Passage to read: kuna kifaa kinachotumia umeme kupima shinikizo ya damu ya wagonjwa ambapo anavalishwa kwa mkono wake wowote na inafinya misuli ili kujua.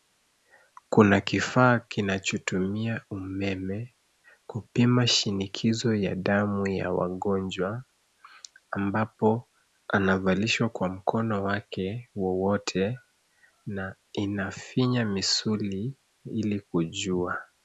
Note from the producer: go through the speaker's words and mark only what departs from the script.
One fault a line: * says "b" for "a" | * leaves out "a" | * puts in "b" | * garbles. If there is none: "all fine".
all fine